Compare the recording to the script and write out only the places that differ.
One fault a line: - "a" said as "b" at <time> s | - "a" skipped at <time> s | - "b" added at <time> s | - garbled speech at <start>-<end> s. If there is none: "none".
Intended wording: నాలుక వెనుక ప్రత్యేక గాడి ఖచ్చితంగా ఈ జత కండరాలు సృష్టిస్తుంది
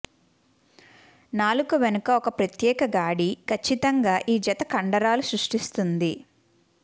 - "ఒక" added at 2.1 s